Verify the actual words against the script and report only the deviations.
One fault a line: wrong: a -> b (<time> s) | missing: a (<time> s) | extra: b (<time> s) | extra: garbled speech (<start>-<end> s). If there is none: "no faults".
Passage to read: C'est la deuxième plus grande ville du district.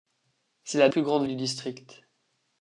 missing: deuxième (0.9 s)
missing: ville (1.2 s)